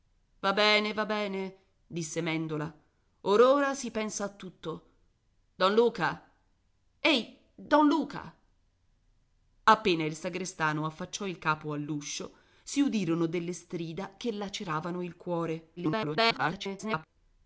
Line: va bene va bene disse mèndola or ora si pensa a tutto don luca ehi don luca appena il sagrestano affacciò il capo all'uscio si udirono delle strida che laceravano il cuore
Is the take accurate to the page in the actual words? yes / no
no